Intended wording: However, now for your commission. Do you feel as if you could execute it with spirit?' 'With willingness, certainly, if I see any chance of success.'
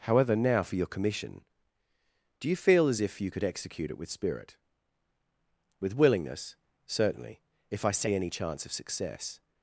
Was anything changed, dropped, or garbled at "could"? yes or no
no